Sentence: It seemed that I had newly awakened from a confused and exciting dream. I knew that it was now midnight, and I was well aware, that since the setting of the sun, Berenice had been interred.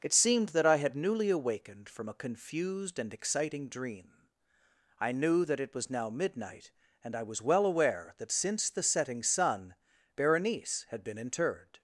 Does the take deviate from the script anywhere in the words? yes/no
yes